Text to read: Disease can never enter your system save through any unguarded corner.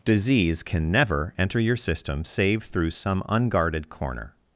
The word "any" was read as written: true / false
false